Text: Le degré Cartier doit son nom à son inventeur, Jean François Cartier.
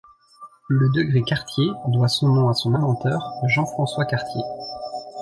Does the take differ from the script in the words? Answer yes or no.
no